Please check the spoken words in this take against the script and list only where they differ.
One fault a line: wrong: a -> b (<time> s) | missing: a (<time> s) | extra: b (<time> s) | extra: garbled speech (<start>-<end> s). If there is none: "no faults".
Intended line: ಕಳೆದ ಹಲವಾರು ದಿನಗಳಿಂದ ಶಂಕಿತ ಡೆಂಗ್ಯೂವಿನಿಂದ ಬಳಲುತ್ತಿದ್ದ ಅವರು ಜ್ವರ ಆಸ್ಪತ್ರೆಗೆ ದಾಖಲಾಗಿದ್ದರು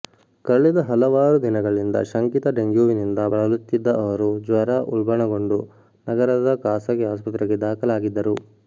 extra: ಉಲ್ಬಣಗೊಂಡು ನಗರದ ಖಾಸಗಿ (4.9 s)